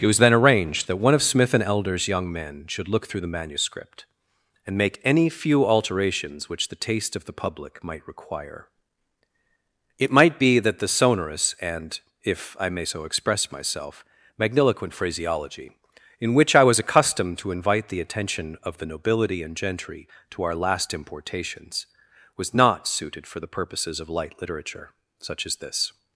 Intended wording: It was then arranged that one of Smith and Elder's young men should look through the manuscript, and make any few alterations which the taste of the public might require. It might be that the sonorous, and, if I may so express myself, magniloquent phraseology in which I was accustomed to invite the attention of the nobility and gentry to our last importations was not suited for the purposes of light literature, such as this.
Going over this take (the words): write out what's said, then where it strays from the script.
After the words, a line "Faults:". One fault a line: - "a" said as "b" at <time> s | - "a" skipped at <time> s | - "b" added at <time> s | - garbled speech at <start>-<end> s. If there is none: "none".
It was then arranged that one of Smith and Elder's young men should look through the manuscript, and make any few alterations which the taste of the public might require. It might be that the sonorous, and, if I may so express myself, magniloquent phraseology in which I was accustomed to invite the attention of the nobility and gentry to our last importations was not suited for the purposes of light literature, such as this.
Faults:
none